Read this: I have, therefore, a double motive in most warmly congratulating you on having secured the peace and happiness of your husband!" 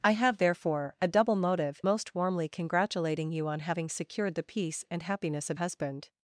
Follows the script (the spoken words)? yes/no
no